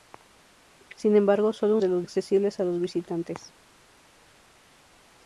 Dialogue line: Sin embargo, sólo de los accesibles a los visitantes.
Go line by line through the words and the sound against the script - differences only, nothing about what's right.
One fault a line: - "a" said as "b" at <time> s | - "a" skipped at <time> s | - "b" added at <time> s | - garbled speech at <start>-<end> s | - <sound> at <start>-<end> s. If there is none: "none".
none